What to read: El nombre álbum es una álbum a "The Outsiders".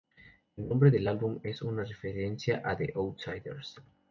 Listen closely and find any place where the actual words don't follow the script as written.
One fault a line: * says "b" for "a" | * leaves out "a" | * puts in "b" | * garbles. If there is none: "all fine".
* puts in "del"
* says "referencia" for "álbum"